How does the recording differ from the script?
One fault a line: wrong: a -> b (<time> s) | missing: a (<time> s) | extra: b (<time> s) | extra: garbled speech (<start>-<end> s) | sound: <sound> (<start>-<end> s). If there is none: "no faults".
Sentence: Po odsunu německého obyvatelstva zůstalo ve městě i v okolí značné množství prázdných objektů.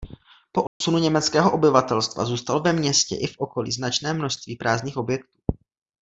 sound: dropout (0.7-0.8 s)